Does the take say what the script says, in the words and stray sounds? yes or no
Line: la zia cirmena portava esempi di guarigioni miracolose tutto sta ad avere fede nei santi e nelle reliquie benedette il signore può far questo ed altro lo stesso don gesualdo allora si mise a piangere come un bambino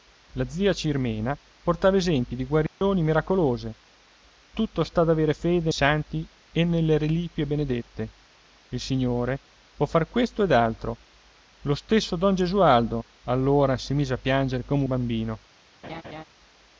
no